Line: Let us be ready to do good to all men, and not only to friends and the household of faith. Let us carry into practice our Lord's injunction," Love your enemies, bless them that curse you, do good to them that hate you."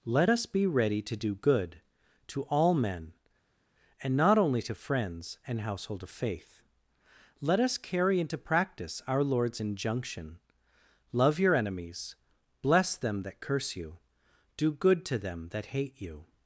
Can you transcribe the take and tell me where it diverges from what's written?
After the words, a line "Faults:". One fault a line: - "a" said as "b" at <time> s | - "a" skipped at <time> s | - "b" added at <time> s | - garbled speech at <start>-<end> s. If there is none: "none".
Let us be ready to do good to all men, and not only to friends and household of faith. Let us carry into practice our Lord's injunction," Love your enemies, bless them that curse you, do good to them that hate you."
Faults:
- "the" skipped at 5.6 s